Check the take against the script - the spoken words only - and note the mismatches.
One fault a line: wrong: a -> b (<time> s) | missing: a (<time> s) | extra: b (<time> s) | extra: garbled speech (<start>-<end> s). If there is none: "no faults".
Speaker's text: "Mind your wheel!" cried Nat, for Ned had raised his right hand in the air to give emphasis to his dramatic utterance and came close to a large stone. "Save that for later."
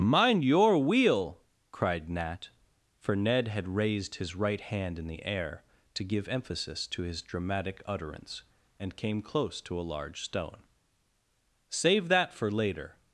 no faults